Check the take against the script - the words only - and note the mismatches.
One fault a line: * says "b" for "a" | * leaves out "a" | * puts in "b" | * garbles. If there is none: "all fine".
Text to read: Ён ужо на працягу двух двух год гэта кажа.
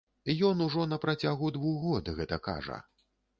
* leaves out "двух"